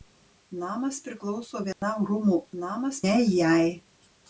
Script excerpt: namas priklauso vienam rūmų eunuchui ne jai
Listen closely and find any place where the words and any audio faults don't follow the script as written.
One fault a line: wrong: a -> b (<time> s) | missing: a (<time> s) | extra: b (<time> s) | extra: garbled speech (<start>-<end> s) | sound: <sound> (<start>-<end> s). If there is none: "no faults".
sound: dropout (1.7-1.8 s)
wrong: eunuchui -> namas (2.6 s)